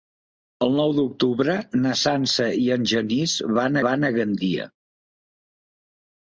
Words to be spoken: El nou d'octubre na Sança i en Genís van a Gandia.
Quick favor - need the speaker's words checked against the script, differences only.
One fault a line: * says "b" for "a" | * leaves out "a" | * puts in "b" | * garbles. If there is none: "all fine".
* puts in "van"